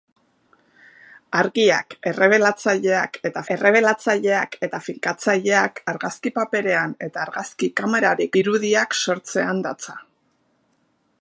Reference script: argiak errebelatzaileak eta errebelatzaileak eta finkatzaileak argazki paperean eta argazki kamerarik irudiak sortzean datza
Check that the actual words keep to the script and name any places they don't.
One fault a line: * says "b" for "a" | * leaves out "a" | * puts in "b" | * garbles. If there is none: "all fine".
all fine